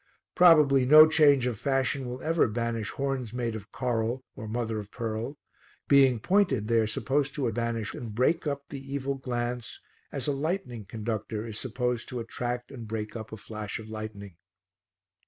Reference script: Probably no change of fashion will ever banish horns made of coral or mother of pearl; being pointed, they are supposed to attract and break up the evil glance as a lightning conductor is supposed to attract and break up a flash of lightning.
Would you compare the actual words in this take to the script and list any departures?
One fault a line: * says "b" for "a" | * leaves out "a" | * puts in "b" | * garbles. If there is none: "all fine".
* says "banish" for "attract"